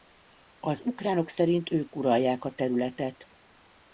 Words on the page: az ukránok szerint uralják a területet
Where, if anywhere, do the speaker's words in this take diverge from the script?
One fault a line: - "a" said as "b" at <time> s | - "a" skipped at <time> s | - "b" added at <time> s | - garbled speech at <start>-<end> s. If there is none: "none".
- "ők" added at 1.7 s